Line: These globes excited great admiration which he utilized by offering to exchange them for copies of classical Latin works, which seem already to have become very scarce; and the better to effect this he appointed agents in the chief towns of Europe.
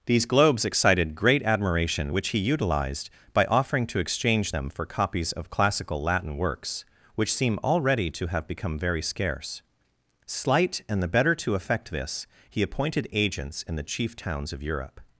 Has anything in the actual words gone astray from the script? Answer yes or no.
yes